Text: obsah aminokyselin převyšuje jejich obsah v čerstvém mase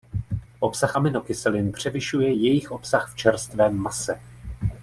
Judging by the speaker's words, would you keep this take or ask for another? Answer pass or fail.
pass